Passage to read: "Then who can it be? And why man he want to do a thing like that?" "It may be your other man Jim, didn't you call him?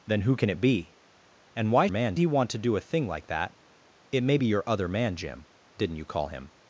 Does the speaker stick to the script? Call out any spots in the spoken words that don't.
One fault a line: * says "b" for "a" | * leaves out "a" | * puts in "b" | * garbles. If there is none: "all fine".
all fine